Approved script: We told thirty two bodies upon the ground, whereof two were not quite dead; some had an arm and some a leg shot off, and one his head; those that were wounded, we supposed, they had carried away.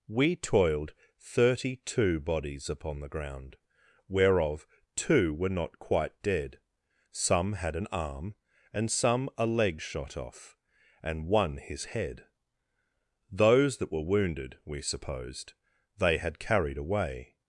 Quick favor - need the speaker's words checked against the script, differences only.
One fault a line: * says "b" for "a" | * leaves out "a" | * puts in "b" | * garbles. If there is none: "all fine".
* says "toiled" for "told"